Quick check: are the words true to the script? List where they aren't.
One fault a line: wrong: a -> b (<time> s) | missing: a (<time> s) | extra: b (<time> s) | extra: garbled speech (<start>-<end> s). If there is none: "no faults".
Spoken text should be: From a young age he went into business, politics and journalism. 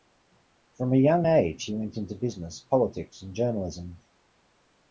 no faults